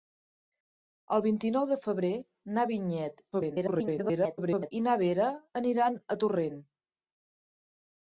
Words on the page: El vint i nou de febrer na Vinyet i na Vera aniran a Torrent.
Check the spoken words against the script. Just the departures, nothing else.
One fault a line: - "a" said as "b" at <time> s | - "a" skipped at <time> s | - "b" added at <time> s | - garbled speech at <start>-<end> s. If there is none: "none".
- garbled speech at 3.3-4.7 s